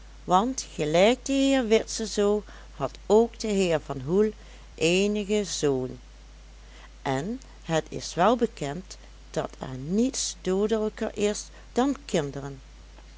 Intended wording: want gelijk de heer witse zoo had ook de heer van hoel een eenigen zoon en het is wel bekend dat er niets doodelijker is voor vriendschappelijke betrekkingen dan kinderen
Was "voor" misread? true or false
true